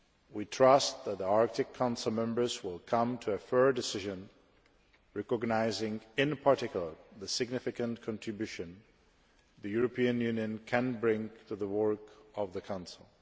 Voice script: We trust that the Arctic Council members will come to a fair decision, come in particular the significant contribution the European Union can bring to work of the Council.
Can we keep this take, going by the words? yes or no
no